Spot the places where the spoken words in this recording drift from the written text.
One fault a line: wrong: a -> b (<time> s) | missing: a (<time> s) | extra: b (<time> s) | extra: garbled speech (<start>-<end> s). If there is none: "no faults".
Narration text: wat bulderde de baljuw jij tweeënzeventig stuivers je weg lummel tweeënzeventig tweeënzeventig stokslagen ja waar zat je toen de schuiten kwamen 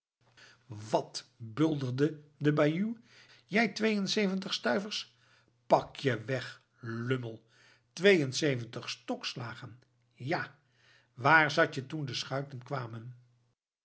extra: pak (5.7 s)
missing: tweeënzeventig (8.9 s)